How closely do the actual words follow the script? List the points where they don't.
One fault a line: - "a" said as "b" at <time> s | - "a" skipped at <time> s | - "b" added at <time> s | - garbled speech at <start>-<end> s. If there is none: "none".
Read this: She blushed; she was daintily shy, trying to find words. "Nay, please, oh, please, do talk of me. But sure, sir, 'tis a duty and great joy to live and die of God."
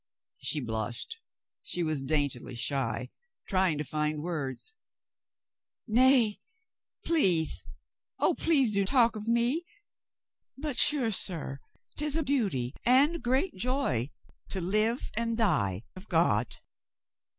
none